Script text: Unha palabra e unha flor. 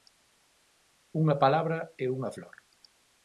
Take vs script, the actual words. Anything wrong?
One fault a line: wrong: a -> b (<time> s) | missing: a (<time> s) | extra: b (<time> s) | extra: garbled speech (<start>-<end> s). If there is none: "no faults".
no faults